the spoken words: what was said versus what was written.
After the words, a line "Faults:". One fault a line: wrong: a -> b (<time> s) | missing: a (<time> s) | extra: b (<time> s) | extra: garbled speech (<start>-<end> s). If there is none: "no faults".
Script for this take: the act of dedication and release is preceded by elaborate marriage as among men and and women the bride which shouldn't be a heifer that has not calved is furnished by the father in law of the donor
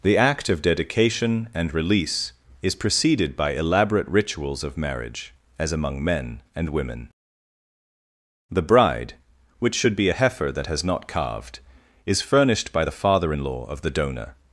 the act of dedication and release is preceded by elaborate rituals of marriage as among men and women the bride which should be a heifer that has not calved is furnished by the father in law of the donor
Faults:
extra: rituals of (4.1 s)
missing: and (6.7 s)
wrong: shouldn't -> should (9.8 s)